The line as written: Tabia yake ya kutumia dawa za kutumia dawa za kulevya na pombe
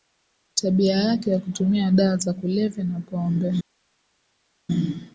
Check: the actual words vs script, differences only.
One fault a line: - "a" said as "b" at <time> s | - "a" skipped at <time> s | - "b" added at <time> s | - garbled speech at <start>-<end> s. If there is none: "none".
- "kutumia dawa za" skipped at 2.3 s